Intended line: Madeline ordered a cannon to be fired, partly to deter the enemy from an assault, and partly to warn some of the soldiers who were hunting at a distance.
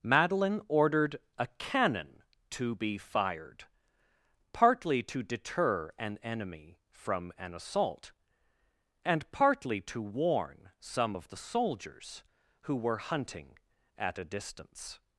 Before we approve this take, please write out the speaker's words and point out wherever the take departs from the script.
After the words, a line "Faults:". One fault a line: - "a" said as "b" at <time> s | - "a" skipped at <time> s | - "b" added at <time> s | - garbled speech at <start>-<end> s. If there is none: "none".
Madeline ordered a cannon to be fired, partly to deter an enemy from an assault, and partly to warn some of the soldiers who were hunting at a distance.
Faults:
- "the" said as "an" at 6.0 s